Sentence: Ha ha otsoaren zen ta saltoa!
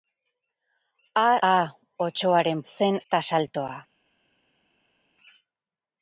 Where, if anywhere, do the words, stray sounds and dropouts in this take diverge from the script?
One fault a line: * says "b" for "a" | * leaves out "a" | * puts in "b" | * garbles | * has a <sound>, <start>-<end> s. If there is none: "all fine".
all fine